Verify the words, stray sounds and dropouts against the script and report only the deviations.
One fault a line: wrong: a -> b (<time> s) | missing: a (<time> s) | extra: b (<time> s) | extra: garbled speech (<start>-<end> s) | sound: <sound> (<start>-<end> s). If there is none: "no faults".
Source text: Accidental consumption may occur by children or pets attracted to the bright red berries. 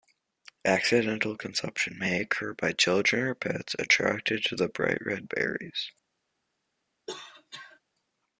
sound: cough (7.1-7.8 s)